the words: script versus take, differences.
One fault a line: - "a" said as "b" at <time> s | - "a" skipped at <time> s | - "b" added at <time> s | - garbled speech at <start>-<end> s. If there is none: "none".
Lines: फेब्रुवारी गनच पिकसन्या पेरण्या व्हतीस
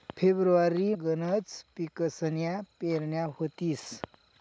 none